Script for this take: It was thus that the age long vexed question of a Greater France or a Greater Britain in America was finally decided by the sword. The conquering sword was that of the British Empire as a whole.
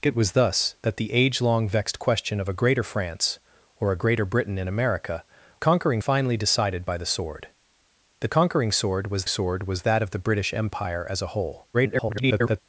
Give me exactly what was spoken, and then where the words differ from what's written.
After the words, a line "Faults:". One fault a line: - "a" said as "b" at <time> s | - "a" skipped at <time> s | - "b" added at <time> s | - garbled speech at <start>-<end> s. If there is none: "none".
It was thus that the age long vexed question of a Greater France or a Greater Britain in America conquering finally decided by the sword. The conquering sword was sword was that of the British Empire as a whole. [garbled]
Faults:
- "was" said as "conquering" at 5.6 s
- "sword was" added at 9.3 s
- garbled speech at 11.7-12.6 s